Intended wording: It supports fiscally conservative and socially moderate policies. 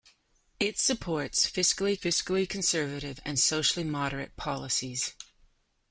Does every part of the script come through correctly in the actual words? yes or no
no